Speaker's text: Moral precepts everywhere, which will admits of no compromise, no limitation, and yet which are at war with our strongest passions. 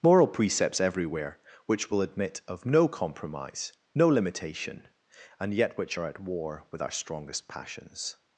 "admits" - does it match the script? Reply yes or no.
no